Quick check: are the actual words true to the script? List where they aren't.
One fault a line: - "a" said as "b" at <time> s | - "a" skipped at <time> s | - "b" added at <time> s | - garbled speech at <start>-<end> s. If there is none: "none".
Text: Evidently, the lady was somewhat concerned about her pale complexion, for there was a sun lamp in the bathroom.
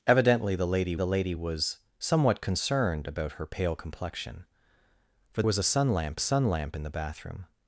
- "the lady" added at 0.9 s
- "there" skipped at 5.4 s
- "sun lamp" added at 6.2 s